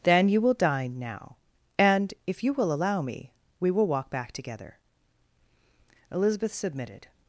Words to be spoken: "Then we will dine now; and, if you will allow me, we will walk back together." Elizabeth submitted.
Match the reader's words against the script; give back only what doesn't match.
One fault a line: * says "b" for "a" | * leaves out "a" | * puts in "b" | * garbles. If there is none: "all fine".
* says "you" for "we"